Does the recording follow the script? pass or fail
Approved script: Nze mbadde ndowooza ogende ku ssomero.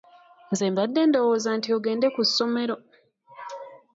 fail